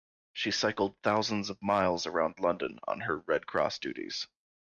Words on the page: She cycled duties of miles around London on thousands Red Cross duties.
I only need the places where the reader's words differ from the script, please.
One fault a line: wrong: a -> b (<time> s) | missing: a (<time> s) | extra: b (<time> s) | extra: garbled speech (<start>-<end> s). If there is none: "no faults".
wrong: duties -> thousands (1.0 s)
wrong: thousands -> her (3.0 s)